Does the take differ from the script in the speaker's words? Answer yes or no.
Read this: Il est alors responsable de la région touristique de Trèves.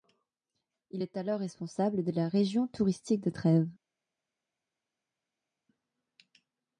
no